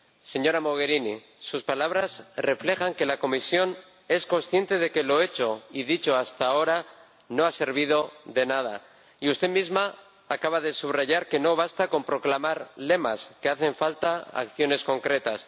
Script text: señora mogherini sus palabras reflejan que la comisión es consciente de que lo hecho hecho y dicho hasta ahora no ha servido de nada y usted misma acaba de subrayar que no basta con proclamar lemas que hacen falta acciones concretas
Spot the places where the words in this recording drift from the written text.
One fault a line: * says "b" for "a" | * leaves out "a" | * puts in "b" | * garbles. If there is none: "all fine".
* leaves out "hecho"